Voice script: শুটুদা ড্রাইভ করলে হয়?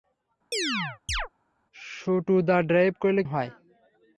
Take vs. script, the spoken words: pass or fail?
pass